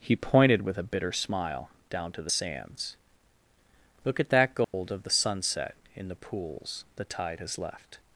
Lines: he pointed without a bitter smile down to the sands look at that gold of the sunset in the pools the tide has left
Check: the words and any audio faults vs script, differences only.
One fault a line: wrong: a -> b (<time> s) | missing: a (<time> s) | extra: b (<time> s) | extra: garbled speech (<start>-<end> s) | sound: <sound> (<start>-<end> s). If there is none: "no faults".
wrong: without -> with (0.6 s)
sound: dropout (4.6-4.7 s)